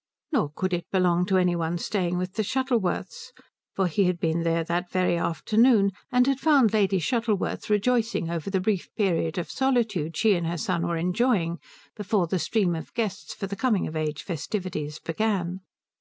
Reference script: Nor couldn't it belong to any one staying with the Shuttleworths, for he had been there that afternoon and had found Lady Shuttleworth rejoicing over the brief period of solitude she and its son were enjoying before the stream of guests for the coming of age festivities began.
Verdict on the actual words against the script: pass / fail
fail